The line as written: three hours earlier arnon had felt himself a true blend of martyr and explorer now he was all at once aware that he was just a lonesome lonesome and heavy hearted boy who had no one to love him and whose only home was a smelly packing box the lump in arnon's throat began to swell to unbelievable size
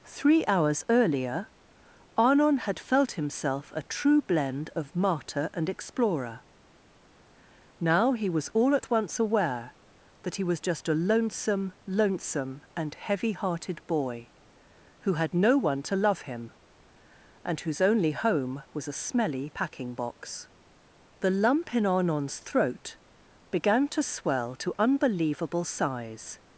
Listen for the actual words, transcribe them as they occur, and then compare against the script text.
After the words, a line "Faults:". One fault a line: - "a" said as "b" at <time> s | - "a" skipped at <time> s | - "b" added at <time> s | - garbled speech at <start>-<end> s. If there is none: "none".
three hours earlier arnon had felt himself a true blend of martyr and explorer now he was all at once aware that he was just a lonesome lonesome and heavy hearted boy who had no one to love him and whose only home was a smelly packing box the lump in arnon's throat began to swell to unbelievable size
Faults:
none